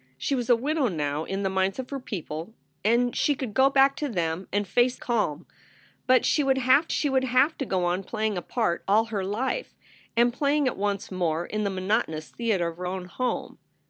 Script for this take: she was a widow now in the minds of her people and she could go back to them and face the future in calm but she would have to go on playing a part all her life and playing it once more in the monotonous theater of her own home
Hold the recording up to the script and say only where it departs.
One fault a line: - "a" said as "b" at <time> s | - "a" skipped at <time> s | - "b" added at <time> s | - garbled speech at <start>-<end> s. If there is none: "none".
- "the future in calm but" said as "calm but she would have" at 5.0 s